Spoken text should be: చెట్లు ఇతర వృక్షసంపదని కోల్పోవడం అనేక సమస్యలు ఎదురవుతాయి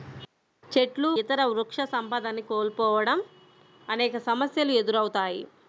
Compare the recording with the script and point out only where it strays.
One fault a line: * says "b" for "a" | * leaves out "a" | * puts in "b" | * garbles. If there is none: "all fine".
all fine